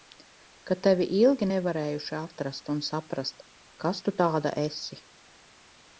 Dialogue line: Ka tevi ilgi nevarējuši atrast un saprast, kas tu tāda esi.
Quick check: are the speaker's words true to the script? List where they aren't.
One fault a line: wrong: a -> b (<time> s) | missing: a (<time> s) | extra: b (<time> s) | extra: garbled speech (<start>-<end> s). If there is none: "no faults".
no faults